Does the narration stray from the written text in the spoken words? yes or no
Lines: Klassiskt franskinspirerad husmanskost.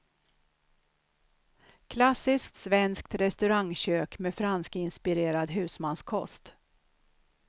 yes